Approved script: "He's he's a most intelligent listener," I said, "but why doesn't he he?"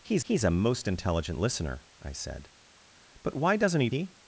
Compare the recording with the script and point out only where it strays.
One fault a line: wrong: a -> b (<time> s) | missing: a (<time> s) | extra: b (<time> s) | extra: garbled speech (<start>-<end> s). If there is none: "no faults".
no faults